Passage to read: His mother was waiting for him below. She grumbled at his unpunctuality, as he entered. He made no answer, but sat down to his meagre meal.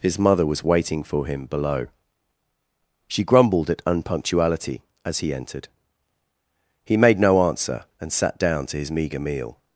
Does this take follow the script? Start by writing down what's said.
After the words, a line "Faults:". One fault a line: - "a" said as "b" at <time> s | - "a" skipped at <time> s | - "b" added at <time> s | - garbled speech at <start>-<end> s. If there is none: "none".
His mother was waiting for him below. She grumbled at unpunctuality, as he entered. He made no answer, and sat down to his meagre meal.
Faults:
- "his" skipped at 3.8 s
- "but" said as "and" at 8.0 s